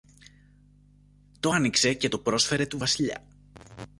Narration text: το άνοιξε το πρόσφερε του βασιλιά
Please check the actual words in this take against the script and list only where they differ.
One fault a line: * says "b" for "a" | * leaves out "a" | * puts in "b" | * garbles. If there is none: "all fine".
* puts in "και"